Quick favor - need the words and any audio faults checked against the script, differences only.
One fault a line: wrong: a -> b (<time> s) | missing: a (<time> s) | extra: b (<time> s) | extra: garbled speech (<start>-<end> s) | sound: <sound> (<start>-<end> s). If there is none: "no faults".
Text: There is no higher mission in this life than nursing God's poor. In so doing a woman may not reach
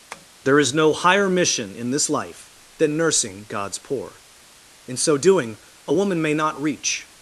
sound: tap (0.1-0.3 s)